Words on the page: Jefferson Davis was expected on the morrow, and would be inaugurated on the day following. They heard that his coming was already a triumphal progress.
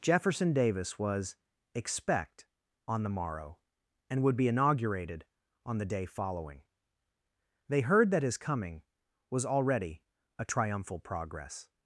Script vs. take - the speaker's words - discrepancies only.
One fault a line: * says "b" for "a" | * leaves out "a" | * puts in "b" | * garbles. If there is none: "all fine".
* says "expect" for "expected"